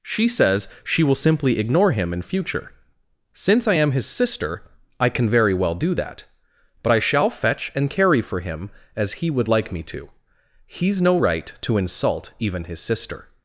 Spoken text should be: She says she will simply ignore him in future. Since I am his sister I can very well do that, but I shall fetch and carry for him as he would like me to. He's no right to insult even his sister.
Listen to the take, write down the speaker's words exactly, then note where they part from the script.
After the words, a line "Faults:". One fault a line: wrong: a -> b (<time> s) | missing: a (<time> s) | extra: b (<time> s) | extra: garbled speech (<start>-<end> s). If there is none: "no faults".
She says she will simply ignore him in future. Since I am his sister I can very well do that, but I shall fetch and carry for him as he would like me to. He's no right to insult even his sister.
Faults:
no faults